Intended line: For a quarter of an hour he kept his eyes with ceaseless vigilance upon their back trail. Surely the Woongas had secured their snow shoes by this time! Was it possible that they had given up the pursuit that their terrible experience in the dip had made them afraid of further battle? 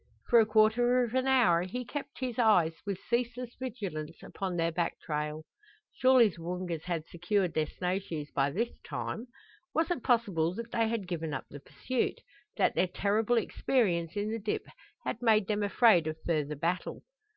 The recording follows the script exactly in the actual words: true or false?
true